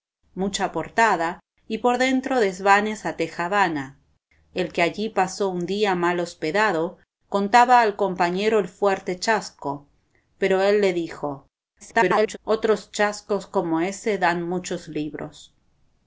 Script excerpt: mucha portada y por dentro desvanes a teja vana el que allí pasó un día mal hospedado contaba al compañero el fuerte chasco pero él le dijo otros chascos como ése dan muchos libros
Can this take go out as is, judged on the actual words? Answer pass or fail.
fail